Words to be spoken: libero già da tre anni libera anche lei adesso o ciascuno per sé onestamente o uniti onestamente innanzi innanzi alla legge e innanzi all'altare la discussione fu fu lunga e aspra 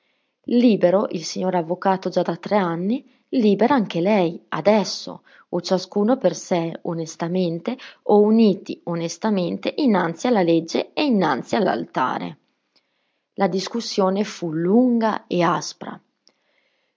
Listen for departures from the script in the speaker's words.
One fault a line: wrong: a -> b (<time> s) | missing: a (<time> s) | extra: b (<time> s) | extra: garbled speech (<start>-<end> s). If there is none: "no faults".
extra: il signor avvocato (1.1 s)
missing: innanzi (10.3 s)
missing: fu (14.5 s)